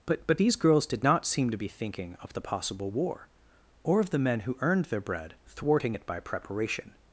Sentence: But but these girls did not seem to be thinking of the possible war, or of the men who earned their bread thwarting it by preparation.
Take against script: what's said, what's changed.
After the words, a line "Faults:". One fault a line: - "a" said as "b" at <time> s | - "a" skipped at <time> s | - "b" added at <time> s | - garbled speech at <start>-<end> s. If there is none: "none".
But but these girls did not seem to be thinking of the possible war, or of the men who earned their bread thwarting it by preparation.
Faults:
none